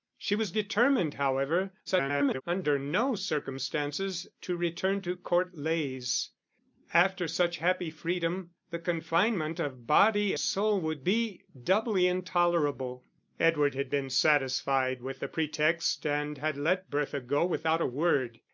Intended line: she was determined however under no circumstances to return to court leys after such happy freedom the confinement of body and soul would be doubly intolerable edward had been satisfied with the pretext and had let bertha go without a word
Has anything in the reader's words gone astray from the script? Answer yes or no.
yes